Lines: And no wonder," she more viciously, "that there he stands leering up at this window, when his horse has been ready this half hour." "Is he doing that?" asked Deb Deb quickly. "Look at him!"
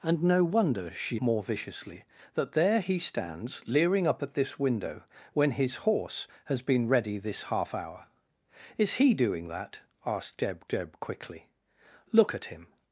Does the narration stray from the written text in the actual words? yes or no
no